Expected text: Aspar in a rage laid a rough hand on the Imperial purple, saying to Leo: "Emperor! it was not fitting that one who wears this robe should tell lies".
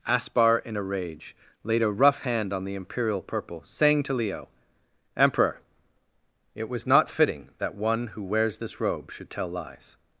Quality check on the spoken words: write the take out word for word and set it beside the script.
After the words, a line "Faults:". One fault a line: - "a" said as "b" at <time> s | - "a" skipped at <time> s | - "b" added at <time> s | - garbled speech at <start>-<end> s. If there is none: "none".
Aspar in a rage laid a rough hand on the Imperial purple, saying to Leo: "Emperor! it was not fitting that one who wears this robe should tell lies".
Faults:
none